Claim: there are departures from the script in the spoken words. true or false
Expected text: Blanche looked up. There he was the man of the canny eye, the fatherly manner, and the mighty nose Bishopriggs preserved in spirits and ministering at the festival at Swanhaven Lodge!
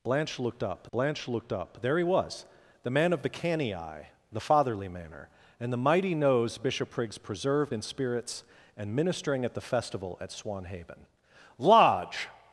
true